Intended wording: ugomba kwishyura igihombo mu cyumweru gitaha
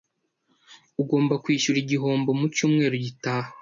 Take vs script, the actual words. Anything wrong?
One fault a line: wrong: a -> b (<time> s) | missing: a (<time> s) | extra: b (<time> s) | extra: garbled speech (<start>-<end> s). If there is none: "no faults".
no faults